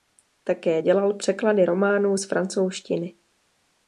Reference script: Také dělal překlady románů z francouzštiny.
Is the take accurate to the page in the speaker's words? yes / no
yes